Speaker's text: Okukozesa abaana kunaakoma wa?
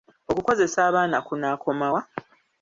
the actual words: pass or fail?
pass